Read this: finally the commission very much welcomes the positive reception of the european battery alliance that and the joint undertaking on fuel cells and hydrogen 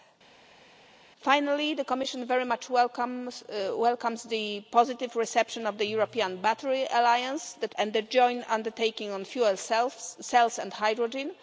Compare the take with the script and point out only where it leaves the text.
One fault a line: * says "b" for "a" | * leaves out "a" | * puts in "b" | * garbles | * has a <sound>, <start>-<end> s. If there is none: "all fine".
all fine